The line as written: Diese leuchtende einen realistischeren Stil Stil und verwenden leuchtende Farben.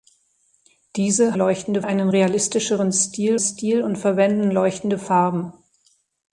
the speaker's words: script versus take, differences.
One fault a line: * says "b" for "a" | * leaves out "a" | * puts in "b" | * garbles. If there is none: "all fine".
all fine